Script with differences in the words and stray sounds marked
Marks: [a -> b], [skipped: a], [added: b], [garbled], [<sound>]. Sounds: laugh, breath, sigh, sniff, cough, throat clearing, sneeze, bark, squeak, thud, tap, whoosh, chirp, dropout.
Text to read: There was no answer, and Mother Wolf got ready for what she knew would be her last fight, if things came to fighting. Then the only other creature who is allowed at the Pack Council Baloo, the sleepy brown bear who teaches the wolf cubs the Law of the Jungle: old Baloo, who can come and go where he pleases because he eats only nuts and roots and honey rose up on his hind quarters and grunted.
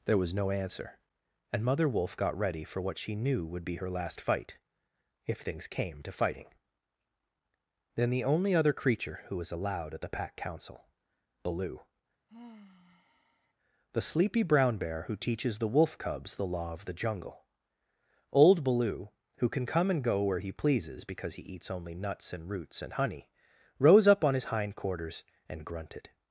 There was no answer, and Mother Wolf got ready for what she knew would be her last fight, if things came to fighting. Then the only other creature who [is -> was] allowed at the Pack Council Baloo, [sigh] the sleepy brown bear who teaches the wolf cubs the Law of the Jungle: old Baloo, who can come and go where he pleases because he eats only nuts and roots and honey rose up on his hind quarters and grunted.